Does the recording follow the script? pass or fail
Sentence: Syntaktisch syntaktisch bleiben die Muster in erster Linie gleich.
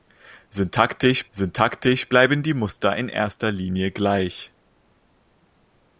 pass